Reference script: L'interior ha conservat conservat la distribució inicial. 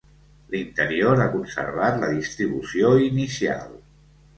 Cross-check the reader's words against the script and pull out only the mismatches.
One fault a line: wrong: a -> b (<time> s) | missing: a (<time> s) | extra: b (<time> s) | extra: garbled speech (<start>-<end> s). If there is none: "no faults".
missing: conservat (2.0 s)